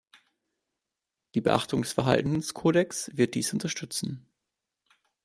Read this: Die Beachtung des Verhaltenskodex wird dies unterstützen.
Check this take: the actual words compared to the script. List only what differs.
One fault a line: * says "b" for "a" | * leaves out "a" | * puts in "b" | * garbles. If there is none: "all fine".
all fine